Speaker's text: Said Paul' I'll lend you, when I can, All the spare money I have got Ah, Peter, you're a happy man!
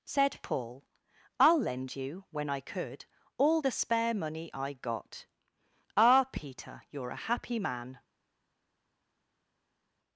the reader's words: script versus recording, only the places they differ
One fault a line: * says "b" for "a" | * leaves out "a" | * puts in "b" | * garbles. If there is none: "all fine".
* says "could" for "can"
* leaves out "have"